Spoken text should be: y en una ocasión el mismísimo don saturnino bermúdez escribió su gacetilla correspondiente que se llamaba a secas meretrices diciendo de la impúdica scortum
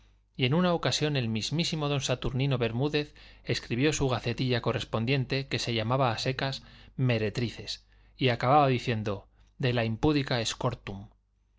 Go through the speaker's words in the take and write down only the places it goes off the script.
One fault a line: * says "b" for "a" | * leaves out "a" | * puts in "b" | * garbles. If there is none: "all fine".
* puts in "y acababa"